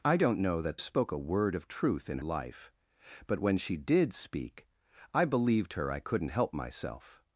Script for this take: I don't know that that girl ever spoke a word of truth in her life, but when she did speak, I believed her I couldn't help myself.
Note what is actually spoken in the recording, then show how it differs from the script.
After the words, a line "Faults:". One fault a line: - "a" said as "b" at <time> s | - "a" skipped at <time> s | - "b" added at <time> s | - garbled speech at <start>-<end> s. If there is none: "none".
I don't know that spoke a word of truth in life, but when she did speak, I believed her I couldn't help myself.
Faults:
- "that girl ever" skipped at 0.8 s
- "her" skipped at 2.2 s